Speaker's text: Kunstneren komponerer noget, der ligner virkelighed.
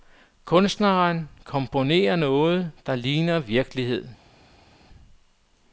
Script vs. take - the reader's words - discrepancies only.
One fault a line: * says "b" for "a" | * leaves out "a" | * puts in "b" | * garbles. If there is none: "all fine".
all fine